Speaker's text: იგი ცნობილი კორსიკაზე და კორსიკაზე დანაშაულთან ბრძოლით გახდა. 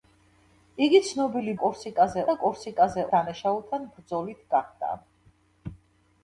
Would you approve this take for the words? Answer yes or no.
yes